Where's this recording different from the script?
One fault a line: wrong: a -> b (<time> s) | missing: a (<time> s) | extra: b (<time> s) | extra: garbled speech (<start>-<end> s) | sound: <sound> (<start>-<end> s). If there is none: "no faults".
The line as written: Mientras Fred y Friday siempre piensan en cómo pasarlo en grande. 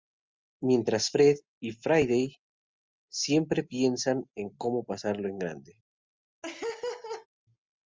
sound: laugh (6.4-7.3 s)